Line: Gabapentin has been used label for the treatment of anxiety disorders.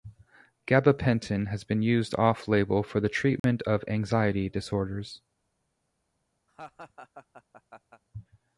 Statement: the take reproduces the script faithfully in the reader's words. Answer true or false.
false